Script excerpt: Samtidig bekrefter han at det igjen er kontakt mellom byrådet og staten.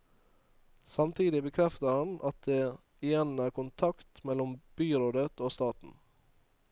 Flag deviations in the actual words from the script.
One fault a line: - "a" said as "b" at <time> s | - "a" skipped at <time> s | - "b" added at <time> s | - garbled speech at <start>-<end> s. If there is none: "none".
none